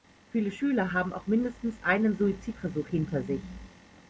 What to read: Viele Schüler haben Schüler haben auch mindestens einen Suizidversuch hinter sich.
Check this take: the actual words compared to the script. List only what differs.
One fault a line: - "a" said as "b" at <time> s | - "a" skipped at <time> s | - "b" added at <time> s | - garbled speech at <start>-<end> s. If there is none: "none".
- "Schüler haben" skipped at 1.1 s